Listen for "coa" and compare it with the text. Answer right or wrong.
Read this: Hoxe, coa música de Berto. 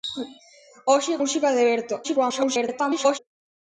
wrong